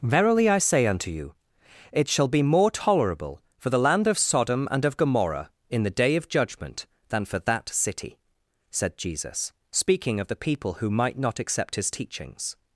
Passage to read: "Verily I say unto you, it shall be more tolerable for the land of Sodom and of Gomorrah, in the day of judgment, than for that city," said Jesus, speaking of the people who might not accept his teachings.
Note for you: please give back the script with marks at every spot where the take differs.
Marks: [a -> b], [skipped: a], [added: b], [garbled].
"Verily I say unto you, it shall be more tolerable for the land of Sodom and of Gomorrah, in the day of judgment, than for that city," said Jesus, speaking of the people who might not accept his teachings.